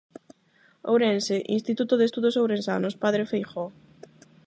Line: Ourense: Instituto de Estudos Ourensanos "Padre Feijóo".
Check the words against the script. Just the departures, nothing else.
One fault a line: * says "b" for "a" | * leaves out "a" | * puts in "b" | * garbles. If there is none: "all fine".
all fine